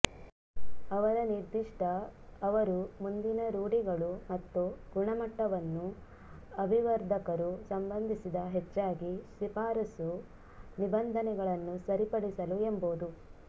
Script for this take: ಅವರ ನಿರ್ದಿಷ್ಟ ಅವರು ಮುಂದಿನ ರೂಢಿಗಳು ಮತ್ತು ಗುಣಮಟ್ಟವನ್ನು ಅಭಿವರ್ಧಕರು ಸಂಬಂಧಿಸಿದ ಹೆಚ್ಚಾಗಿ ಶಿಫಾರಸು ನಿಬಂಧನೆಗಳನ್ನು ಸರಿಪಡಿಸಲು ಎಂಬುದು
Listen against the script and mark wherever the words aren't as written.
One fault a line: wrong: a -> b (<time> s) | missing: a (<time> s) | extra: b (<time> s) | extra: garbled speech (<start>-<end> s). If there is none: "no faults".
no faults